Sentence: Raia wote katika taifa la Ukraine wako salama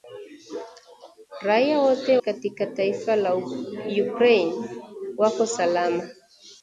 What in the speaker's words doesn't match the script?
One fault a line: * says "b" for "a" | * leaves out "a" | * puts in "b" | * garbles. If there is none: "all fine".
all fine